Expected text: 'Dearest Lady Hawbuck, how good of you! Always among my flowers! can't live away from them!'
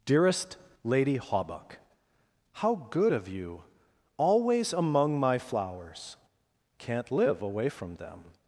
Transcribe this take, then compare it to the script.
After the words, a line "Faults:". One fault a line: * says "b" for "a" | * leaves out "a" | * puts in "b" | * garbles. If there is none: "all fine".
'Dearest Lady Hawbuck, how good of you! Always among my flowers! can't live away from them!'
Faults:
all fine